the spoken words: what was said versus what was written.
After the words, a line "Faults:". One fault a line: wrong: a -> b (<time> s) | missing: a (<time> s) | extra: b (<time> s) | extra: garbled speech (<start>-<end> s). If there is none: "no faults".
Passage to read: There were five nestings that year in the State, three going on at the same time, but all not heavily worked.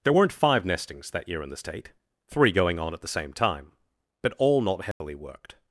There weren't five nestings that year in the State, three going on at the same time, but all not heavily worked.
Faults:
wrong: were -> weren't (0.1 s)